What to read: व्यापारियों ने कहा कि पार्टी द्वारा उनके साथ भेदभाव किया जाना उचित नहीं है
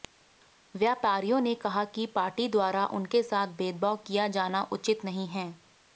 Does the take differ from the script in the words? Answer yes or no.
no